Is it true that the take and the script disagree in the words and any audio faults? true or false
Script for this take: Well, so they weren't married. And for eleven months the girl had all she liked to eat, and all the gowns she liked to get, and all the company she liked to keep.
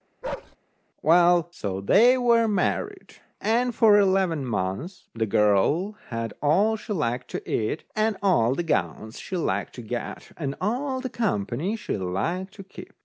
true